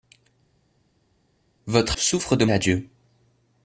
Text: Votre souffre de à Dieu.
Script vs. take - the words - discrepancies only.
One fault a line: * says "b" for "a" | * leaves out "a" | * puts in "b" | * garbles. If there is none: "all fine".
all fine